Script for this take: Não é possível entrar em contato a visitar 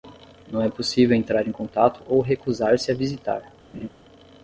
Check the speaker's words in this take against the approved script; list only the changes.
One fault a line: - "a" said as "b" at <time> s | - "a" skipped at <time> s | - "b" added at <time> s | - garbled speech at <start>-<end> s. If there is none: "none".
- "ou recusar se" added at 2.1 s